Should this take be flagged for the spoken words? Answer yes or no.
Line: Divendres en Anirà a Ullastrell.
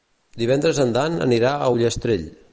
yes